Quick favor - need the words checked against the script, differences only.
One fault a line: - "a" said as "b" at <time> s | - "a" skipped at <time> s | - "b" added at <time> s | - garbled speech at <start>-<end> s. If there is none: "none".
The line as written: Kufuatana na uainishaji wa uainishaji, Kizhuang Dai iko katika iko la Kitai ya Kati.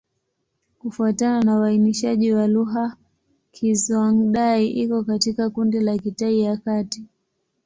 - "uainishaji" said as "lugha" at 2.5 s
- "iko" said as "kundi" at 5.5 s